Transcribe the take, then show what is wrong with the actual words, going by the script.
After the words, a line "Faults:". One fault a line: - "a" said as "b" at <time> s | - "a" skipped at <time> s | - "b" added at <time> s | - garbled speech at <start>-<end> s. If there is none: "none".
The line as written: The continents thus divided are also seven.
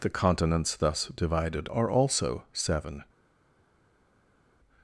The continents thus divided are also seven.
Faults:
none